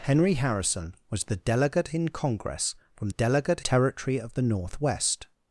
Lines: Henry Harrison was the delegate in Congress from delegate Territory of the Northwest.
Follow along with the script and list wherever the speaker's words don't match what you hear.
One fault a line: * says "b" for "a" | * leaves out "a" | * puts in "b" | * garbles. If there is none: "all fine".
all fine